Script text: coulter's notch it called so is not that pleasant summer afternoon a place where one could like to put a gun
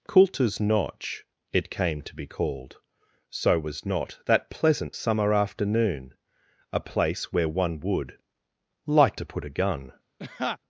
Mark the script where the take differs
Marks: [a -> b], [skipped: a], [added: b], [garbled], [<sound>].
coulter's notch it [added: came to be] called so [is -> was] not that pleasant summer afternoon a place where one [could -> would] like to put a gun [laugh]